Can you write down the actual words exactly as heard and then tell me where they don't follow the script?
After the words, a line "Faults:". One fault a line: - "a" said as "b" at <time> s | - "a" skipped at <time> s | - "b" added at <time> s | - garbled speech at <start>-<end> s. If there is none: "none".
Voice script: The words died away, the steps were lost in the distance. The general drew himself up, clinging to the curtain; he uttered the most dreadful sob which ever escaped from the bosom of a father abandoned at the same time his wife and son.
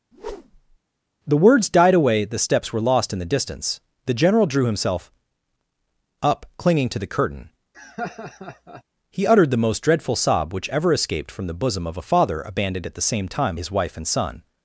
The words died away, the steps were lost in the distance. The general drew himself up, clinging to the curtain; he uttered the most dreadful sob which ever escaped from the bosom of a father abandoned at the same time his wife and son.
Faults:
none